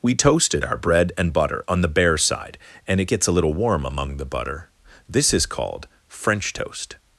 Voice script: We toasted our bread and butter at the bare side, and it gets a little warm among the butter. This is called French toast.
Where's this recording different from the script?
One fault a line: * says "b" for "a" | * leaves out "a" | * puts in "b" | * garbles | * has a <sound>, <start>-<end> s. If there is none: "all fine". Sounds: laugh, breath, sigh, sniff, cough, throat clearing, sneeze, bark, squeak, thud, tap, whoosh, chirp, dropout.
* says "on" for "at"